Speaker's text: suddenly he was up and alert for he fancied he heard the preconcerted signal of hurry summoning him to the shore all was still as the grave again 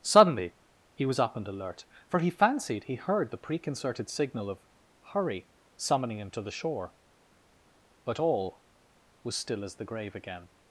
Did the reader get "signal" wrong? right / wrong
right